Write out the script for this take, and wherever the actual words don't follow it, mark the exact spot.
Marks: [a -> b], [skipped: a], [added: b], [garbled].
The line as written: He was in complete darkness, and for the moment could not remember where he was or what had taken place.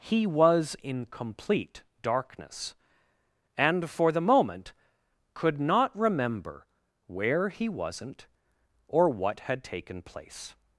He was in complete darkness, and for the moment could not remember where he [was -> wasn't] or what had taken place.